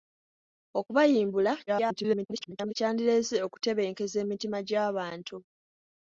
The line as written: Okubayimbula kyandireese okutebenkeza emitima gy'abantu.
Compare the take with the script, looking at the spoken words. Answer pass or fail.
fail